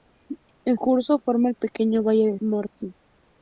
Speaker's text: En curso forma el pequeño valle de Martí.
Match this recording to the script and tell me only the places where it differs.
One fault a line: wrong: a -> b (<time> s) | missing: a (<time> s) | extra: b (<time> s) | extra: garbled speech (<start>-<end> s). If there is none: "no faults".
no faults